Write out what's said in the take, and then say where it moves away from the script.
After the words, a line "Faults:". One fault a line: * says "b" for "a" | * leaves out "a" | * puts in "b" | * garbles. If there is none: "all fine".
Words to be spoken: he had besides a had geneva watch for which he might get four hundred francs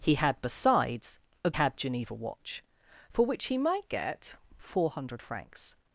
he had besides a had geneva watch for which he might get four hundred francs
Faults:
all fine